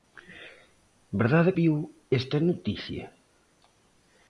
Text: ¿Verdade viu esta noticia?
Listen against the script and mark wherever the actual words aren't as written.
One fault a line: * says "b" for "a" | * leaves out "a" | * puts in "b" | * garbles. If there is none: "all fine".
all fine